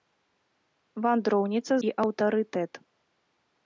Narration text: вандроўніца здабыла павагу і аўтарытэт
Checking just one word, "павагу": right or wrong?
wrong